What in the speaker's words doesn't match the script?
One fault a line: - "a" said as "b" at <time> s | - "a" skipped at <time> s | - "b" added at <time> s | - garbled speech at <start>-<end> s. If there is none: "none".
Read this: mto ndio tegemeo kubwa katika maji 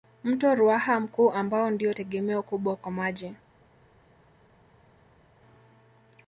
- "ruaha mkuu ambao" added at 0.6 s
- "katika" said as "kwa" at 2.8 s